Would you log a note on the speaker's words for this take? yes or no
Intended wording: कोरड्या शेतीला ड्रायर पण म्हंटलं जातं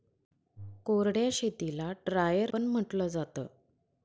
no